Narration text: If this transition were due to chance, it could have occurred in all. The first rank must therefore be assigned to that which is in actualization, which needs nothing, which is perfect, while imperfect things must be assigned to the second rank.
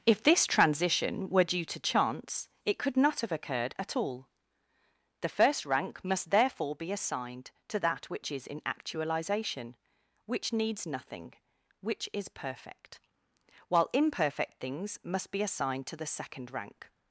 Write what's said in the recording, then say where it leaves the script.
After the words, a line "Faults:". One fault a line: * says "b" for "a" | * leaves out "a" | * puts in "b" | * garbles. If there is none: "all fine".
If this transition were due to chance, it could not have occurred at all. The first rank must therefore be assigned to that which is in actualization, which needs nothing, which is perfect, while imperfect things must be assigned to the second rank.
Faults:
* puts in "not"
* says "at" for "in"